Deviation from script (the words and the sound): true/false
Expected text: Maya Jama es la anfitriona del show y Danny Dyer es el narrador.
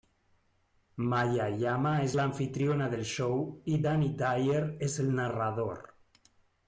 false